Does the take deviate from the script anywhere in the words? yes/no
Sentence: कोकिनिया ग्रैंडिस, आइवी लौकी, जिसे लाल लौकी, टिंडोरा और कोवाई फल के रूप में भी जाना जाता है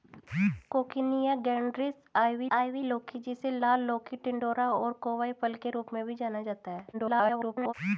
yes